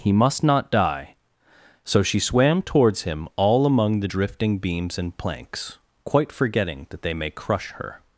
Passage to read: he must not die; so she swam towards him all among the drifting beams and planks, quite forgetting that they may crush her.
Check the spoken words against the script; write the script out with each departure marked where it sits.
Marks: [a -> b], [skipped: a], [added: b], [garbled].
he must not die; so she swam towards him all among the drifting beams and planks, quite forgetting that they may crush her.